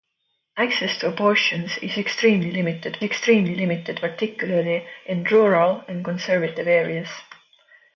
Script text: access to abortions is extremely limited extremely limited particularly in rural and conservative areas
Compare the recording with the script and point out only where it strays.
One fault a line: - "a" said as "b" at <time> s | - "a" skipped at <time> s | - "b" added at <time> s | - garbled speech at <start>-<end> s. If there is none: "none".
none